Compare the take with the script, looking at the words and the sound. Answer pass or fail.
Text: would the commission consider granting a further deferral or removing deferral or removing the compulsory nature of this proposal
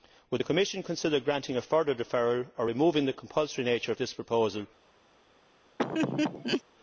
fail